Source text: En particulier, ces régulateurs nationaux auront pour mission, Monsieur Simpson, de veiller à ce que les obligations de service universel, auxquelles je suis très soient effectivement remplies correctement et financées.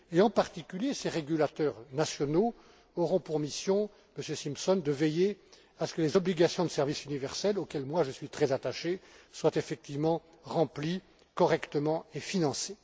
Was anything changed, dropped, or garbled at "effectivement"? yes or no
no